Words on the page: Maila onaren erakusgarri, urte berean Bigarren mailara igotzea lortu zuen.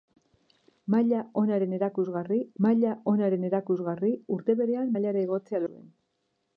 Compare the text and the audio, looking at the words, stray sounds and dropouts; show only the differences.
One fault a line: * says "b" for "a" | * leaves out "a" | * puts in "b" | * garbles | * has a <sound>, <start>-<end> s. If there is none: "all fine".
* puts in "maila onaren erakusgarri"
* leaves out "Bigarren"
* leaves out "lortu"